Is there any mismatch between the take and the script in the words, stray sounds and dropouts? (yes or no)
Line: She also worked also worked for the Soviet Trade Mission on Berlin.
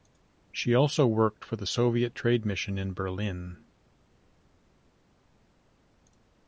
yes